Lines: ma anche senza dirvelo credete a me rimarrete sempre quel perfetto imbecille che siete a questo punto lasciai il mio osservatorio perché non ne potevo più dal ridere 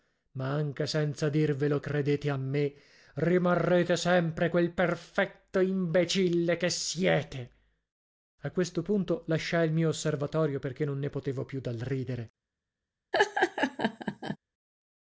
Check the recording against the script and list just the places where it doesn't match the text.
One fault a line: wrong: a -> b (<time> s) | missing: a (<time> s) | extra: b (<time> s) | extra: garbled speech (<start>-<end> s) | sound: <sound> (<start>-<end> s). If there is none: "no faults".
sound: laugh (13.1-14.4 s)